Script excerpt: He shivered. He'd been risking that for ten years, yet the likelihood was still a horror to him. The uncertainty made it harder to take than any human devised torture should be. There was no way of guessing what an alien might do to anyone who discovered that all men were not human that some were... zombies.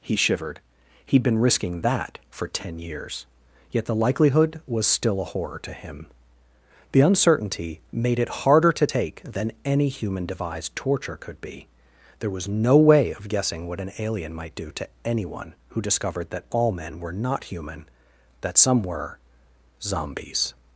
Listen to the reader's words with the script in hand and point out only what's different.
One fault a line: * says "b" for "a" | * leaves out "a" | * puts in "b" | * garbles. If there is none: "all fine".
* says "could" for "should"